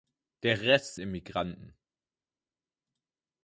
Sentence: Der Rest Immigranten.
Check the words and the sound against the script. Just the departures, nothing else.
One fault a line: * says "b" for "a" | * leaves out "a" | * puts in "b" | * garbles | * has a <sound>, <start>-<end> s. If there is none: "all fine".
all fine